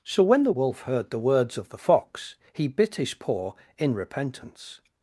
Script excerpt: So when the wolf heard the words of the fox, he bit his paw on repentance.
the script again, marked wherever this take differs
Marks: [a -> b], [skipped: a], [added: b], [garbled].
So when the wolf heard the words of the fox, he bit his paw [on -> in] repentance.